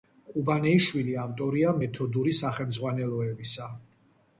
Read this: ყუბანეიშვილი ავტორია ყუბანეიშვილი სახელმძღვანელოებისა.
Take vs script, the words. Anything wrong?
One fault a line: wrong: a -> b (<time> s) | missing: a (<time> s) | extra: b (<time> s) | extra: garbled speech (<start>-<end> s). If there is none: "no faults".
wrong: ყუბანეიშვილი -> მეთოდური (1.8 s)